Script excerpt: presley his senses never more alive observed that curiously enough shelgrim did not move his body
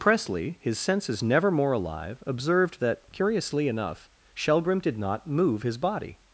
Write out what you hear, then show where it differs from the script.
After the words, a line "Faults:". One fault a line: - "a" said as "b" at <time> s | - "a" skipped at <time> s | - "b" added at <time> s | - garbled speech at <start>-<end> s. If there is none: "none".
presley his senses never more alive observed that curiously enough shelgrim did not move his body
Faults:
none